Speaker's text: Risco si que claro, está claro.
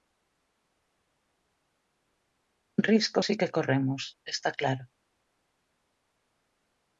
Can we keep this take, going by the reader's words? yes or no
no